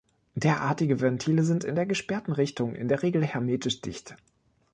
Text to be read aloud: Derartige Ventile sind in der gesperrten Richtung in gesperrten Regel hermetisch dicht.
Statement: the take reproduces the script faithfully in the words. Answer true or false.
false